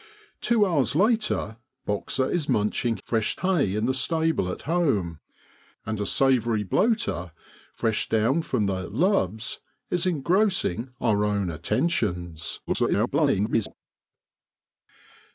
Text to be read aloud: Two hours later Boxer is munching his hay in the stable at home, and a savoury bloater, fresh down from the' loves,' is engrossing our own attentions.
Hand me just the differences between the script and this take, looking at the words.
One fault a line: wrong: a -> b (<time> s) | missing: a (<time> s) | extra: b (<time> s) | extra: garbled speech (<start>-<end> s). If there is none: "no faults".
wrong: his -> fresh (3.0 s)
extra: garbled speech (12.7-13.8 s)